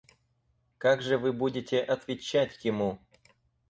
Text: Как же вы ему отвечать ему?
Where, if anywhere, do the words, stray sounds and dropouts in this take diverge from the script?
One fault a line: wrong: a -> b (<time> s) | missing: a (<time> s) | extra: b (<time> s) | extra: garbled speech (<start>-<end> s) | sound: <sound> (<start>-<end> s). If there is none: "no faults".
wrong: ему -> будете (1.3 s)